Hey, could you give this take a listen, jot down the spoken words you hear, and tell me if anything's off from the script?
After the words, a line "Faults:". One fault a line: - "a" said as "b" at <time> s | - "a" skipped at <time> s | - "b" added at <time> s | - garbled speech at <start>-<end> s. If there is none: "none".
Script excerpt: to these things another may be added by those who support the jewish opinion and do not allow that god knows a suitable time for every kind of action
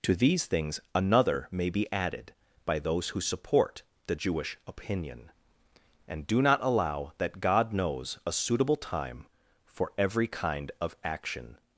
to these things another may be added by those who support the jewish opinion and do not allow that god knows a suitable time for every kind of action
Faults:
none